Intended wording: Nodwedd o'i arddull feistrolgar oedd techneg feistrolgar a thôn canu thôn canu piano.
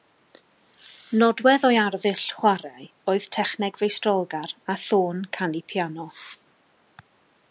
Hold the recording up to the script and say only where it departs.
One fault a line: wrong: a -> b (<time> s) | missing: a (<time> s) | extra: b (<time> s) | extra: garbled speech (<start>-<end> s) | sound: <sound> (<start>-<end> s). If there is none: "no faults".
wrong: feistrolgar -> chwarae (2.4 s)
missing: thôn canu (5.6 s)